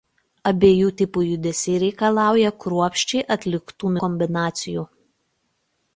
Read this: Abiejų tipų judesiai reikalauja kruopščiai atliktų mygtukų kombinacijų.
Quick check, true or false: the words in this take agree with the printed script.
false